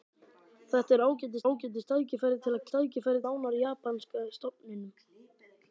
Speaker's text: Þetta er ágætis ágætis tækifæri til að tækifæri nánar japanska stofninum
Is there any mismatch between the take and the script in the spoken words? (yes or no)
no